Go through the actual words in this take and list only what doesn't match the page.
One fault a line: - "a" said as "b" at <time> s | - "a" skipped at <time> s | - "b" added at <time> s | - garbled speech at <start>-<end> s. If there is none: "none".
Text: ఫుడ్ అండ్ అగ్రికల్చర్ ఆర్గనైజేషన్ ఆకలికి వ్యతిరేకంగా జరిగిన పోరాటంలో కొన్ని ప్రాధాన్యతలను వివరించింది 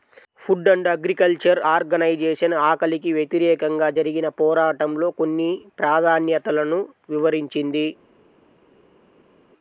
none